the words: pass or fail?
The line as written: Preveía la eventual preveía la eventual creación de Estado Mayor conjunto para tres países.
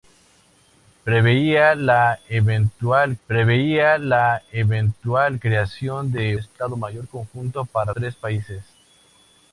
pass